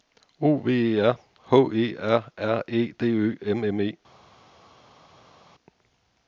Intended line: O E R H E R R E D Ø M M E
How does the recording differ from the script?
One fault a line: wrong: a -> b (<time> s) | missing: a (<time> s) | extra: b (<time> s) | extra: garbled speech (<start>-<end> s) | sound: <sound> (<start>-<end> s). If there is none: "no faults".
extra: V (0.6 s)